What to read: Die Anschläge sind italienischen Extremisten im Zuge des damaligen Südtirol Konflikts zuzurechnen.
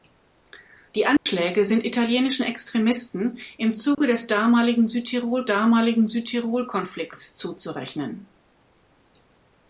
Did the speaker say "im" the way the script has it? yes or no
yes